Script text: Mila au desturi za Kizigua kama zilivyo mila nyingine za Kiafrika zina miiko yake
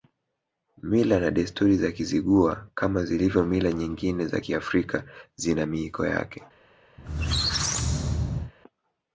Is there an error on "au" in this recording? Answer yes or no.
yes